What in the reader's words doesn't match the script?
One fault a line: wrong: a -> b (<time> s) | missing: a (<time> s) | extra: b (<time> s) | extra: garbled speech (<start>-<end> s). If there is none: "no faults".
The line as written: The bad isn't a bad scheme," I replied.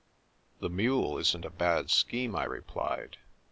wrong: bad -> mule (0.7 s)